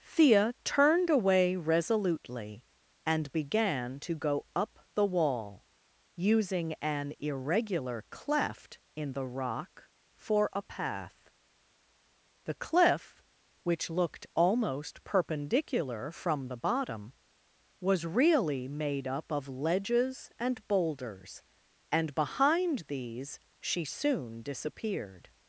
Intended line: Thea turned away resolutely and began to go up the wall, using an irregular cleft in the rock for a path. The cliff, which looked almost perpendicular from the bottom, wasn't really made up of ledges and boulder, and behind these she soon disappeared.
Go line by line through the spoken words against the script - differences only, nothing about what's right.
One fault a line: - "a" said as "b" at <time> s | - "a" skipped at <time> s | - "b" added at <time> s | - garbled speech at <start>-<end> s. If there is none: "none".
- "wasn't" said as "was" at 17.8 s
- "boulder" said as "boulders" at 20.7 s